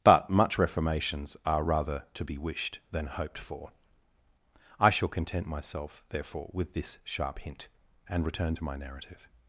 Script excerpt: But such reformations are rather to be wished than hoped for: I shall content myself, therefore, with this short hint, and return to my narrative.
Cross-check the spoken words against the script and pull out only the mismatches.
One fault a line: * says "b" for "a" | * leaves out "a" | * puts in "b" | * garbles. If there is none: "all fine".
* says "much" for "such"
* says "sharp" for "short"